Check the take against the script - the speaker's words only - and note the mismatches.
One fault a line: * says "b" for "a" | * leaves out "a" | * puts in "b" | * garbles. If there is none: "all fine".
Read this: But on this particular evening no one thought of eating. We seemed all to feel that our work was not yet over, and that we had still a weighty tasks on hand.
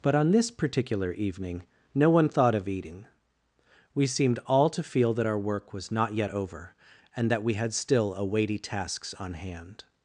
all fine